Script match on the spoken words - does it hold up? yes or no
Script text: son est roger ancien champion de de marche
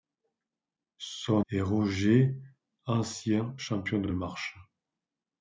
yes